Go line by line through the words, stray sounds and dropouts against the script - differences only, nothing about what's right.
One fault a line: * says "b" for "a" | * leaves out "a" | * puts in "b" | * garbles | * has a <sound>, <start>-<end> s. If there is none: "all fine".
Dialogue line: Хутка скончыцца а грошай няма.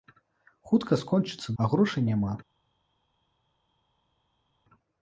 all fine